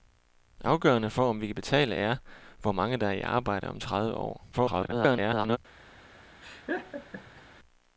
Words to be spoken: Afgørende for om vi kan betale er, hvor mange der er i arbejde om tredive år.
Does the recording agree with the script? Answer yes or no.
no